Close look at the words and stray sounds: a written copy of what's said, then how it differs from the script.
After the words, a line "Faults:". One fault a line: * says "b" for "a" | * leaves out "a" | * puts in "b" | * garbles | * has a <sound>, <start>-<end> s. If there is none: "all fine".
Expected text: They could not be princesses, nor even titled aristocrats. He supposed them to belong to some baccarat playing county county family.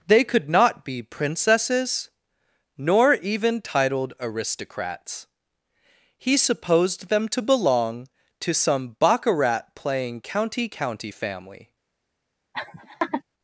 They could not be princesses, nor even titled aristocrats. He supposed them to belong to some baccarat playing county county family.
Faults:
* has a laugh, 12.5-13.2 s